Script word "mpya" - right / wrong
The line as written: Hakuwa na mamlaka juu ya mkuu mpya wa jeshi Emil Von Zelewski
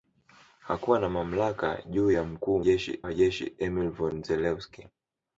wrong